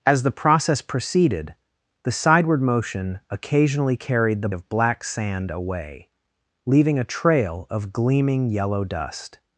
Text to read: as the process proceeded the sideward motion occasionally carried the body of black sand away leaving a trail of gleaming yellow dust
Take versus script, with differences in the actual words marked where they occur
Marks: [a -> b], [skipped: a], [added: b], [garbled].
as the process proceeded the sideward motion occasionally carried the [skipped: body] of black sand away leaving a trail of gleaming yellow dust